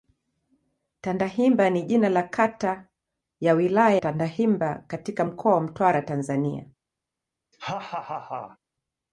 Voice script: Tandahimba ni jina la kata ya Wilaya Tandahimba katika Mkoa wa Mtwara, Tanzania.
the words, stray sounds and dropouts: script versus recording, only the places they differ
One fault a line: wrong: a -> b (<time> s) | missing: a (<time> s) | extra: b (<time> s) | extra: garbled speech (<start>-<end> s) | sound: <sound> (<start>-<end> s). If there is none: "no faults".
sound: laugh (7.5-8.6 s)